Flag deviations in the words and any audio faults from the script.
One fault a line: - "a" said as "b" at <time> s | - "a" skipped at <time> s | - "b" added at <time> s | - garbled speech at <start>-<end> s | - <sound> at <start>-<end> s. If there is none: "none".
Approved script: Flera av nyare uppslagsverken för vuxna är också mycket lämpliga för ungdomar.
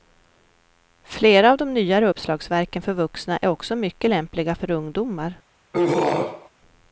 - "de" added at 1.6 s
- throat clearing at 5.7-6.5 s